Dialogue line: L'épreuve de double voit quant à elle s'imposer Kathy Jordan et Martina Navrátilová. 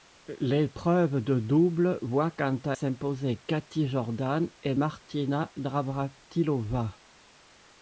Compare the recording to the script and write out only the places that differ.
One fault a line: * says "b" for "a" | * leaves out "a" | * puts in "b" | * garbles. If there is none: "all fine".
* leaves out "elle"